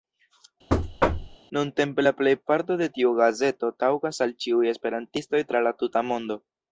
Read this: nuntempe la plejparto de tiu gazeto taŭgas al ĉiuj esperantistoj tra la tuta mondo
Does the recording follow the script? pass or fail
pass